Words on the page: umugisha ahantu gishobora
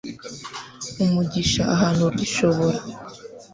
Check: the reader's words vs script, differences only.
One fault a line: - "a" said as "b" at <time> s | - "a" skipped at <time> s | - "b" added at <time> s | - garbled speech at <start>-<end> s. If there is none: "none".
none